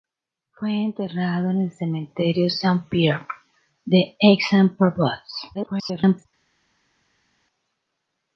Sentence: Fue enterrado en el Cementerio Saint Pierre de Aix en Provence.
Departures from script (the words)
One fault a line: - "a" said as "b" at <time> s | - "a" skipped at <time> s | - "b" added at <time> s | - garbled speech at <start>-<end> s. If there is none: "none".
- garbled speech at 5.5-6.3 s